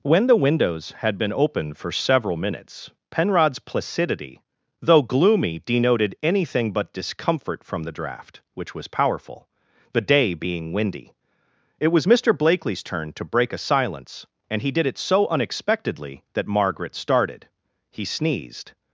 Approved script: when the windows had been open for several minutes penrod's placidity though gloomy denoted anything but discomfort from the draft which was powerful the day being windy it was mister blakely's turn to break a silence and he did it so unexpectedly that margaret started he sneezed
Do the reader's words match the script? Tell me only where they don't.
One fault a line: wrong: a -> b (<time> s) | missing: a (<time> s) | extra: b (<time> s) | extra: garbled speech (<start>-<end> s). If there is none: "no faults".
no faults